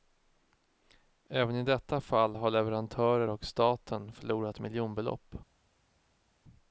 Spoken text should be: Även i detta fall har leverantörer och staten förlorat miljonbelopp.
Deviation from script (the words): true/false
false